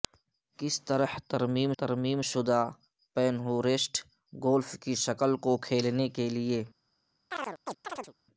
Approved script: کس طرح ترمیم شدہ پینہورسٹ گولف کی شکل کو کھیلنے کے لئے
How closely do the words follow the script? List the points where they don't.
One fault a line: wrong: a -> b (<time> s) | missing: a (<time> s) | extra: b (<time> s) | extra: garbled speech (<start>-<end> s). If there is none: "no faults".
extra: ترمیم (1.8 s)